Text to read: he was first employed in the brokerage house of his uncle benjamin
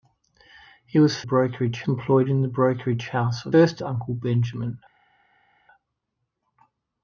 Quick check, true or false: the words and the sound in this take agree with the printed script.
false